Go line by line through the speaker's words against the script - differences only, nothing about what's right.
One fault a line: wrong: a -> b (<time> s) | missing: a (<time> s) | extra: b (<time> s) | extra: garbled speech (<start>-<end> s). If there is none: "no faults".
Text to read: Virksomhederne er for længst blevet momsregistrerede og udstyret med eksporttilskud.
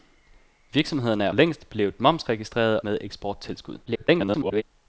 missing: for (1.3 s)
missing: og udstyret (2.8 s)
extra: garbled speech (3.9-4.6 s)